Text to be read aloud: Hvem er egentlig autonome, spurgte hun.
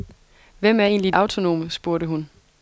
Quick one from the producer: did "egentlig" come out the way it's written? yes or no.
yes